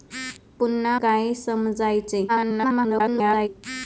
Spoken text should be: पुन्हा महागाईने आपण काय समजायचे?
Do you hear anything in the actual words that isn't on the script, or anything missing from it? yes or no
yes